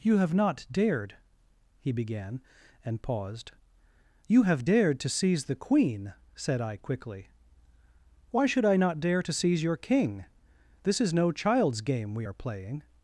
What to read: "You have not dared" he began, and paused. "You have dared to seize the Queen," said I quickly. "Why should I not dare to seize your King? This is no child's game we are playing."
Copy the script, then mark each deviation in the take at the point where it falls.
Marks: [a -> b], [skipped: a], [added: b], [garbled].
"You have not dared" he began, and paused. "You have dared to seize the Queen," said I quickly. "Why should I not dare to seize your King? This is no child's game we are playing."